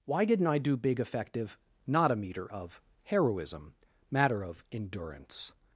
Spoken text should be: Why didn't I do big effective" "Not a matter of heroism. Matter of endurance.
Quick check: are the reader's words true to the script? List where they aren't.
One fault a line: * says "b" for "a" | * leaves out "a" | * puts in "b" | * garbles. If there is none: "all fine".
* says "meter" for "matter"